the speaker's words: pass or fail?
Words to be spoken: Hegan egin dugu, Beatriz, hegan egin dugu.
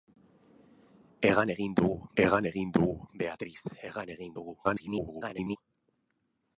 fail